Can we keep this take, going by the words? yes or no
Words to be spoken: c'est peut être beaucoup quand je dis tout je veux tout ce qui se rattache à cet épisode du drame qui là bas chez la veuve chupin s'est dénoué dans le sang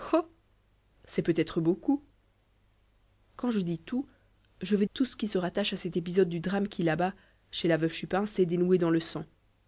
yes